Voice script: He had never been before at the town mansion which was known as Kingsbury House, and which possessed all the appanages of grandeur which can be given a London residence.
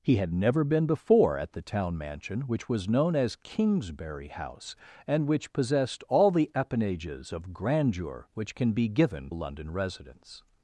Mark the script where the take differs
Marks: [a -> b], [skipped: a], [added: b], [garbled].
He had never been before at the town mansion which was known as Kingsbury House, and which possessed all the appanages of grandeur which can be given a London residence.